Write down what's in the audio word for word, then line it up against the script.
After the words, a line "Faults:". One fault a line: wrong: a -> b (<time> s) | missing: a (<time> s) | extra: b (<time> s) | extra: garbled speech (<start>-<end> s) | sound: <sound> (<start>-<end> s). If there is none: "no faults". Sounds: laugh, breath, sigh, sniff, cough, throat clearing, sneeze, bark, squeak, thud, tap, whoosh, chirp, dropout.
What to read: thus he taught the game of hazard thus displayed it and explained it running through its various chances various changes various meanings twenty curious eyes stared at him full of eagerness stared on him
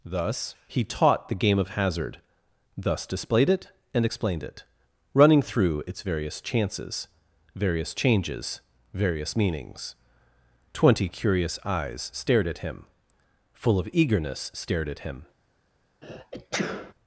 thus he taught the game of hazard thus displayed it and explained it running through its various chances various changes various meanings twenty curious eyes stared at him full of eagerness stared at him
Faults:
wrong: on -> at (14.9 s)
sound: sneeze (16.0-16.9 s)